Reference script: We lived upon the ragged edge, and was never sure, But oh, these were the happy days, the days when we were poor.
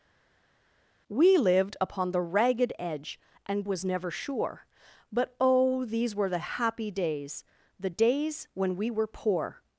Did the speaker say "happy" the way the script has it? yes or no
yes